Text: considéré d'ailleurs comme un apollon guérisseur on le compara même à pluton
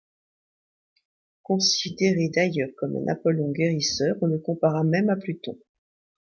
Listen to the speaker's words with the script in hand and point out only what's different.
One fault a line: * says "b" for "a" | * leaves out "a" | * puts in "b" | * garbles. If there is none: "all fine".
all fine